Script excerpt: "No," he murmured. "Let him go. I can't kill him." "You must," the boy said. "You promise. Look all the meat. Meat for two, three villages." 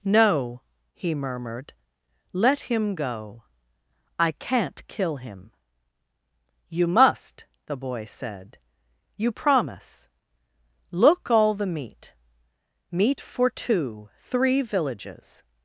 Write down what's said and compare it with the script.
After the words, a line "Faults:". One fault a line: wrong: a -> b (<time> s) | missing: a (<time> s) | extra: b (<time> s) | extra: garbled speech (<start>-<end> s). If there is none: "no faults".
"No," he murmured. "Let him go. I can't kill him." "You must," the boy said. "You promise. Look all the meat. Meat for two, three villages."
Faults:
no faults